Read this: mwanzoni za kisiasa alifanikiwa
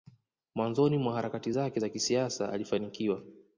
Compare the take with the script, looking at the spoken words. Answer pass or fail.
fail